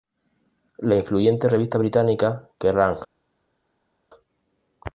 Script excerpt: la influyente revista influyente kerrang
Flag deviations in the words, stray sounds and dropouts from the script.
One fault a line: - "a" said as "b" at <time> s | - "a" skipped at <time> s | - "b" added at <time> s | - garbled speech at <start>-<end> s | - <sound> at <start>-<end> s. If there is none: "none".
- "influyente" said as "británica" at 1.8 s